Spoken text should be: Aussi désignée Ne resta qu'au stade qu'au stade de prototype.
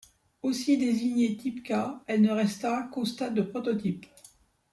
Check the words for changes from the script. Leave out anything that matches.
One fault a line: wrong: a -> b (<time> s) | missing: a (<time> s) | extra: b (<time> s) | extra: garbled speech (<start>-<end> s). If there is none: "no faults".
extra: Type K elle (1.4 s)
missing: qu'au stade (3.4 s)